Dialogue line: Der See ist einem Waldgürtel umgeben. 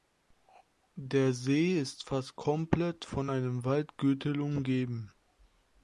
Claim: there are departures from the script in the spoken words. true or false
true